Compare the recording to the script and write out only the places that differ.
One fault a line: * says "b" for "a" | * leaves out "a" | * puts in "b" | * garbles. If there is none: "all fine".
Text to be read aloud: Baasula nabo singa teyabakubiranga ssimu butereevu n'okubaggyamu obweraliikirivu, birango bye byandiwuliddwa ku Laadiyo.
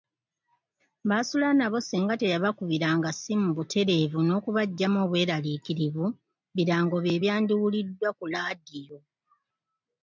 all fine